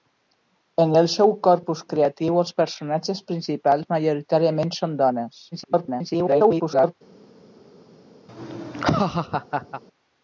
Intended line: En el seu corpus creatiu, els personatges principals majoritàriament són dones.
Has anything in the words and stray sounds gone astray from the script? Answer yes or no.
yes